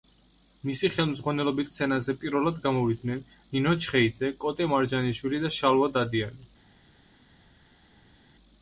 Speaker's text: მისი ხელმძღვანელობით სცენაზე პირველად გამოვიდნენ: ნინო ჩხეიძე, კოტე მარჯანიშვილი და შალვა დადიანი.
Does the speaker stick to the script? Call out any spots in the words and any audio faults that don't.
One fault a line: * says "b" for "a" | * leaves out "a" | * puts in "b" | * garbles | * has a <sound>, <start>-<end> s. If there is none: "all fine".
all fine